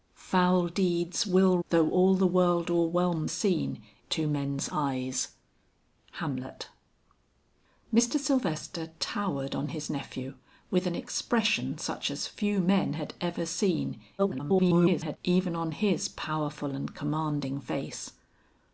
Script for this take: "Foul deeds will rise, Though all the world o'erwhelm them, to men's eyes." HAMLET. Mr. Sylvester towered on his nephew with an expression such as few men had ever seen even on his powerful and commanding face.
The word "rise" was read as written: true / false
false